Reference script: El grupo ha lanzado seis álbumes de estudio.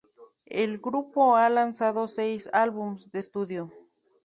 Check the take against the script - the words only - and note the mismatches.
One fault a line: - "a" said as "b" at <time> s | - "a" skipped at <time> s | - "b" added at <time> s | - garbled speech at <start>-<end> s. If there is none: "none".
none